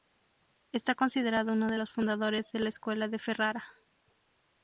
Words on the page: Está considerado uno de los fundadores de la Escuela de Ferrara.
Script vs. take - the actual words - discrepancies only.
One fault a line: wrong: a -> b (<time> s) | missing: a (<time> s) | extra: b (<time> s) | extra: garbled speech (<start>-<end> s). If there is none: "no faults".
no faults